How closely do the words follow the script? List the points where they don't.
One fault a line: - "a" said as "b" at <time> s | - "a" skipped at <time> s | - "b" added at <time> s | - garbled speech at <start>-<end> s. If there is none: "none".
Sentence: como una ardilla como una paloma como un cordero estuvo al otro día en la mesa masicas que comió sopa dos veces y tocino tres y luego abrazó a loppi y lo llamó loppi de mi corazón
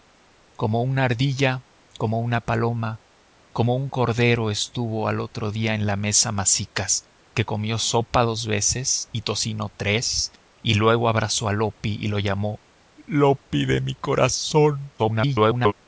- garbled speech at 15.0-15.7 s